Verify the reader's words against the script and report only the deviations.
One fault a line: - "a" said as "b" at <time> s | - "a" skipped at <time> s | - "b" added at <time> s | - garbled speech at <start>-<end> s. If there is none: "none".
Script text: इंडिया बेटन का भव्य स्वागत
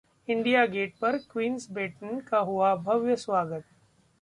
- "गेट पर क्वींस" added at 0.7 s
- "हुआ" added at 2.4 s